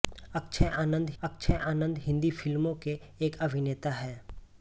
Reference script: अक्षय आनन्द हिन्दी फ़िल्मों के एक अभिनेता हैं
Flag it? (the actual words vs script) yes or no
yes